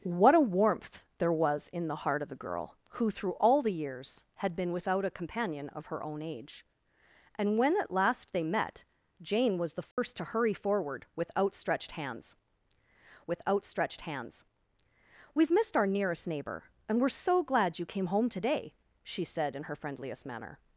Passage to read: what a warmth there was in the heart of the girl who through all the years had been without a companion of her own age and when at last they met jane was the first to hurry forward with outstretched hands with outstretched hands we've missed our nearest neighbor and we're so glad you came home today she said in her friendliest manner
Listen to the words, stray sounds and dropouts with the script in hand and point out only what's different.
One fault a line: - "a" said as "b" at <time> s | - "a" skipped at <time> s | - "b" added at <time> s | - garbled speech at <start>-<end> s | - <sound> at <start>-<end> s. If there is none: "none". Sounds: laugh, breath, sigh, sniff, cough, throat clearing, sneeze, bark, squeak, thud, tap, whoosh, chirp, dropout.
- dropout at 9.9-10.0 s